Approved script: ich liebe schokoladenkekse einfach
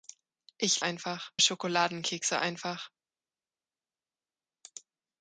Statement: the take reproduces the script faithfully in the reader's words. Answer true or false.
false